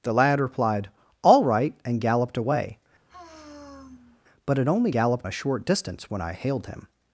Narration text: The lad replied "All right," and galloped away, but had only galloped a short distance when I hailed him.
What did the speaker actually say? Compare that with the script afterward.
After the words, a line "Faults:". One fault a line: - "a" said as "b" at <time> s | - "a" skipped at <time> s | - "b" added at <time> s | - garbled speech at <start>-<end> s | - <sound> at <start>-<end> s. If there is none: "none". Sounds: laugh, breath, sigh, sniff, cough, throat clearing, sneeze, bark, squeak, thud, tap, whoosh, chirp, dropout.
The lad replied "All right," and galloped away, but had only galloped a short distance when I hailed him.
Faults:
- sigh at 3.1-4.2 s